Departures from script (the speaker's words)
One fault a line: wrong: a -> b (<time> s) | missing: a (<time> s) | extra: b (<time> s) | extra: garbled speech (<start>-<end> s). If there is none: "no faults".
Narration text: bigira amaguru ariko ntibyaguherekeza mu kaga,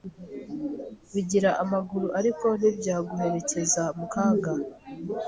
no faults